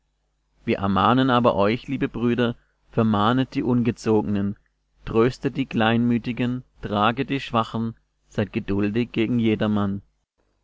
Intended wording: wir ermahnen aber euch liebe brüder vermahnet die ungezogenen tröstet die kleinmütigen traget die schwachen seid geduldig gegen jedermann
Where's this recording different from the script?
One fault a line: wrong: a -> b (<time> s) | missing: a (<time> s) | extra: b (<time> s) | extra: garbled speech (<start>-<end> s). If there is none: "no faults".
no faults